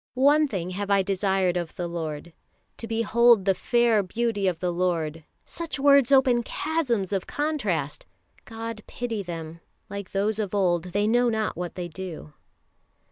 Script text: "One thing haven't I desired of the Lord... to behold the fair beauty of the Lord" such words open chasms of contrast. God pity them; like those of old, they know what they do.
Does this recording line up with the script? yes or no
no